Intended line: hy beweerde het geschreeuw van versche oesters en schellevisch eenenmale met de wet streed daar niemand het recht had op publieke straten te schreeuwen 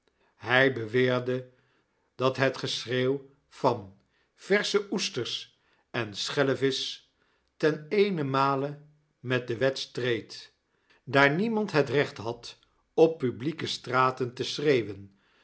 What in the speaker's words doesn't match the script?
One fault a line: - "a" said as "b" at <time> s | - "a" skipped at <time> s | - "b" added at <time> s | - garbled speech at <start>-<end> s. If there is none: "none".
- "dat" added at 2.1 s
- "ten" added at 7.6 s